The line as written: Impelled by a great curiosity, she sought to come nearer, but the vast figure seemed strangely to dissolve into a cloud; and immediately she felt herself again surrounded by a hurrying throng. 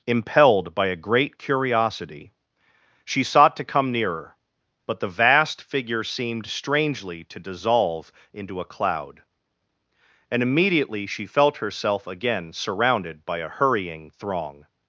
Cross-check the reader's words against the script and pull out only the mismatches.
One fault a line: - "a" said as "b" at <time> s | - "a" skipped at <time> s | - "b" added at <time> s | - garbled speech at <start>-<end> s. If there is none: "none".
none